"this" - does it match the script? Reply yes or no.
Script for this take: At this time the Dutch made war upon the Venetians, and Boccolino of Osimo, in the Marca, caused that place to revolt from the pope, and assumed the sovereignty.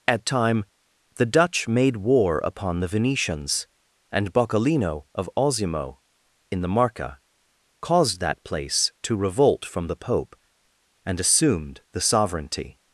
no